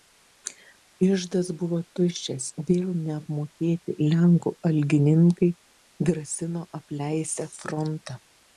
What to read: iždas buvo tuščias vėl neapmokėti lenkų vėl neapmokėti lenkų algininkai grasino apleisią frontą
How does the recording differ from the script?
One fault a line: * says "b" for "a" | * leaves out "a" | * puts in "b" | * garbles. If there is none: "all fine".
* leaves out "vėl neapmokėti lenkų"